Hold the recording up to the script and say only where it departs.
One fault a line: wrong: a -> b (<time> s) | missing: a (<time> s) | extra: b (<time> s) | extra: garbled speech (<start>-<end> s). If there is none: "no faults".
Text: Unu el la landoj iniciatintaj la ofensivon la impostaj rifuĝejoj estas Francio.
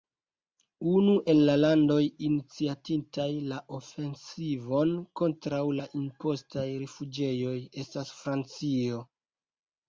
extra: kontraŭ (5.2 s)